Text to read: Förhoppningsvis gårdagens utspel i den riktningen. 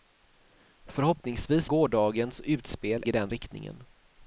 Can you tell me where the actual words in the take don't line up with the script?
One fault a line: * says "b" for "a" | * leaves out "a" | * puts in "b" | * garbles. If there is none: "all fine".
all fine